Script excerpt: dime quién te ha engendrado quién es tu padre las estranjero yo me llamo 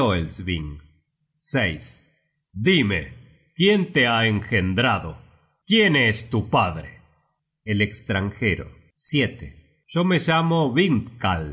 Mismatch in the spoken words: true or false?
true